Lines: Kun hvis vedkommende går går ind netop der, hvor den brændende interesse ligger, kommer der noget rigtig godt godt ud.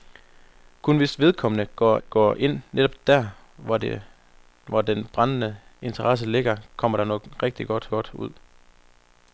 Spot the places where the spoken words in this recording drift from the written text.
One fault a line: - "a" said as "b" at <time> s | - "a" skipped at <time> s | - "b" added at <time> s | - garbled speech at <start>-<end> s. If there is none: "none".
none